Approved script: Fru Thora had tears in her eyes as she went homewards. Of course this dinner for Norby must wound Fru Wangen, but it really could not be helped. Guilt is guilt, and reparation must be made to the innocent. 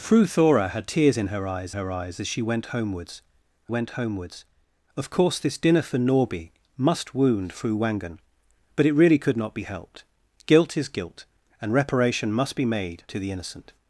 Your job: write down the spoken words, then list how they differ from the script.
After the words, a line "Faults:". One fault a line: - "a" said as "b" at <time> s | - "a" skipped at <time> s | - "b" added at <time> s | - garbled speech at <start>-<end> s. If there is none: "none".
Fru Thora had tears in her eyes her eyes as she went homewards went homewards. Of course this dinner for Norby must wound Fru Wangen, but it really could not be helped. Guilt is guilt, and reparation must be made to the innocent.
Faults:
- "her eyes" added at 1.7 s
- "went homewards" added at 3.7 s